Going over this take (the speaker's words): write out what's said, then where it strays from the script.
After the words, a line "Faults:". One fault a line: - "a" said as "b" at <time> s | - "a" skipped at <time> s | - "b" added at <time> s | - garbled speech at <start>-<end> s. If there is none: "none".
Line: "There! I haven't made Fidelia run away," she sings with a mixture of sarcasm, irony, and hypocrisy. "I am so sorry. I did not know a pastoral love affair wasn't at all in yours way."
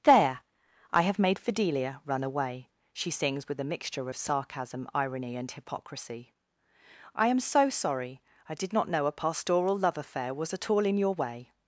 "There! I have made Fidelia run away," she sings with a mixture of sarcasm, irony, and hypocrisy. "I am so sorry. I did not know a pastoral love affair was at all in your way."
Faults:
- "haven't" said as "have" at 1.0 s
- "wasn't" said as "was" at 10.3 s
- "yours" said as "your" at 11.0 s